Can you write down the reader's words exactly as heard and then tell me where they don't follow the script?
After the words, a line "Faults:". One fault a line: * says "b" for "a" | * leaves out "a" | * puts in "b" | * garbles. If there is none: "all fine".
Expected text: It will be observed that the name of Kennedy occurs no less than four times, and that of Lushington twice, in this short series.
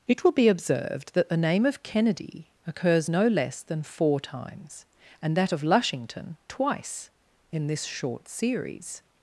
It will be observed that the name of Kennedy occurs no less than four times, and that of Lushington twice, in this short series.
Faults:
all fine